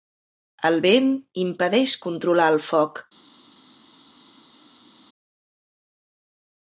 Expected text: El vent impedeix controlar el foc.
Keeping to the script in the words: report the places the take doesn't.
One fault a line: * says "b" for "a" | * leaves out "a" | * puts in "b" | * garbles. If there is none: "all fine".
all fine